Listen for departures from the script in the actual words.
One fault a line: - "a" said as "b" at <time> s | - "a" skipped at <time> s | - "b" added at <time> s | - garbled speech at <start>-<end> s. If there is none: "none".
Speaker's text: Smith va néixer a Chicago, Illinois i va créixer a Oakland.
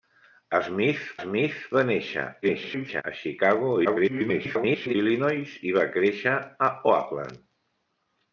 - "smith" added at 1.2 s
- garbled speech at 2.4-3.0 s
- garbled speech at 3.8-5.0 s